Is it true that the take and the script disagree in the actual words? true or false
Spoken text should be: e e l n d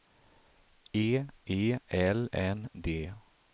false